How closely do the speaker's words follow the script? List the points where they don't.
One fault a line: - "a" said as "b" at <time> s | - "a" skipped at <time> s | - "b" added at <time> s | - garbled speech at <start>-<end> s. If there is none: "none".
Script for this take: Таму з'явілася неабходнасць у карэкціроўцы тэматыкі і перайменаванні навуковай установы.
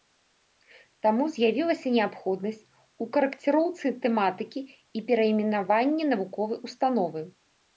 none